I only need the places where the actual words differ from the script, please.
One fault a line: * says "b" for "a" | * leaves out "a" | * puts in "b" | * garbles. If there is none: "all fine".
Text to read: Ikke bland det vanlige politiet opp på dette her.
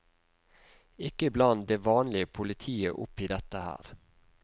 * says "i" for "på"